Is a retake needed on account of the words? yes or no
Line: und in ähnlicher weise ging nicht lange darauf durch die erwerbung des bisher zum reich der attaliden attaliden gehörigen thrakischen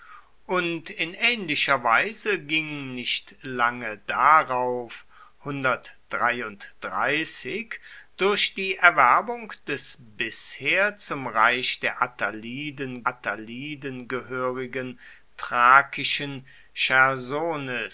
no